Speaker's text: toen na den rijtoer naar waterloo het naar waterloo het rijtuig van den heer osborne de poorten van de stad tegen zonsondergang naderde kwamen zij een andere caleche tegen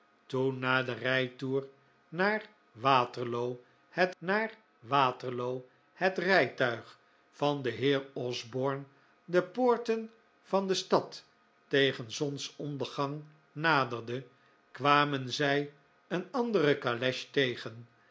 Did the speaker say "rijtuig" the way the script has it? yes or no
yes